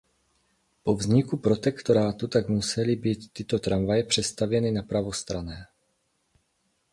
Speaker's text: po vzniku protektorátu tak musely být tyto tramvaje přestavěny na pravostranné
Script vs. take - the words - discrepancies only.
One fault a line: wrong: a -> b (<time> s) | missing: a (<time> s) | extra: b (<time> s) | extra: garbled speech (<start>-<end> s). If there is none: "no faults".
no faults